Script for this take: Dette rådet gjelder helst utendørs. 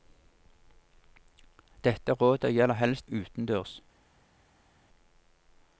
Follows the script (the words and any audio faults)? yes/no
yes